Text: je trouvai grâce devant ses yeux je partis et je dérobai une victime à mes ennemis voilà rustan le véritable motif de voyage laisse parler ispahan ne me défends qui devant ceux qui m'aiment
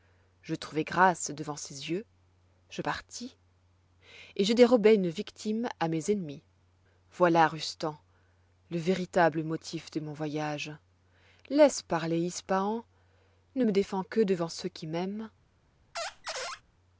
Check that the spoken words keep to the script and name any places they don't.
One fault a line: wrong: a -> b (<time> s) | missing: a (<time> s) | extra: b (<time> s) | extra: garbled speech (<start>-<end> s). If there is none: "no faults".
extra: mon (10.0 s)
wrong: qui -> que (14.0 s)